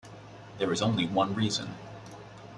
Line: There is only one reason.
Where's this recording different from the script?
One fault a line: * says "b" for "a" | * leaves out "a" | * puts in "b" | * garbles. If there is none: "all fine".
all fine